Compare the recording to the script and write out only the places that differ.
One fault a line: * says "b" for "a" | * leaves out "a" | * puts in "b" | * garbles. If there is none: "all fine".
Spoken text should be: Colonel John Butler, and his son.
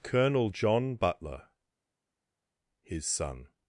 * leaves out "and"